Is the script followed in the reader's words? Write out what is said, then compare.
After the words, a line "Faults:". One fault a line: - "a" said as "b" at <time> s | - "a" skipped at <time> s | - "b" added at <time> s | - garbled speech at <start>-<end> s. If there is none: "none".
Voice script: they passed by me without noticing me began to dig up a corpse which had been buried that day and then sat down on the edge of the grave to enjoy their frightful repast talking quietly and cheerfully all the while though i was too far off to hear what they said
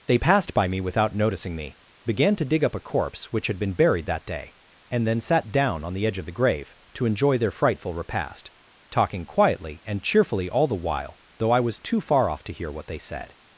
they passed by me without noticing me began to dig up a corpse which had been buried that day and then sat down on the edge of the grave to enjoy their frightful repast talking quietly and cheerfully all the while though i was too far off to hear what they said
Faults:
none